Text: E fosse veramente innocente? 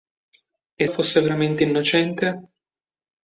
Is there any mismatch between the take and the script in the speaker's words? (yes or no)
no